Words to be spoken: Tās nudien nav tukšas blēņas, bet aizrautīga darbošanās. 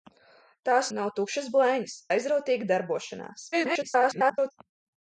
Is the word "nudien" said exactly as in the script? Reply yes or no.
no